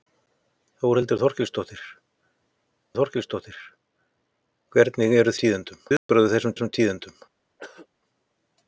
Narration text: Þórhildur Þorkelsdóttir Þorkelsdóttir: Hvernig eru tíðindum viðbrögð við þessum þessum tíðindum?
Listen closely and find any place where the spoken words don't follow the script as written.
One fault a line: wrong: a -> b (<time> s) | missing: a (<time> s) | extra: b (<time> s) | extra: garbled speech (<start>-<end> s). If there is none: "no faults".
no faults